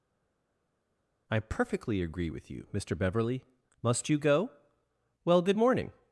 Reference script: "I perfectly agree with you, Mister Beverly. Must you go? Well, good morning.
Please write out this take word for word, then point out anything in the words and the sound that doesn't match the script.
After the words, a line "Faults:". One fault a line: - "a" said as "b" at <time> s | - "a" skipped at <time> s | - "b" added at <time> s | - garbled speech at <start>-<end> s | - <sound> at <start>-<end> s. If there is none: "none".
"I perfectly agree with you, Mister Beverly. Must you go? Well, good morning.
Faults:
none